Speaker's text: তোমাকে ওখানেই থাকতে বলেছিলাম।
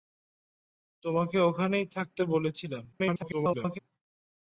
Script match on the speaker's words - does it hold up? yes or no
no